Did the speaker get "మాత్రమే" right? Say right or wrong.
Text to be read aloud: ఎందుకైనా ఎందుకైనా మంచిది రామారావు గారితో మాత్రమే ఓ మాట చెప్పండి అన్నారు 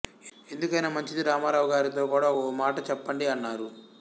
wrong